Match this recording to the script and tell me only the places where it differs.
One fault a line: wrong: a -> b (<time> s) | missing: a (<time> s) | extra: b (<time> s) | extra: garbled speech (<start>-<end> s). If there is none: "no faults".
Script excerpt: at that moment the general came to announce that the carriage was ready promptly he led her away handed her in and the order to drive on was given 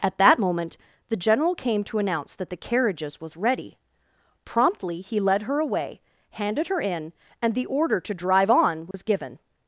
wrong: carriage -> carriages (2.6 s)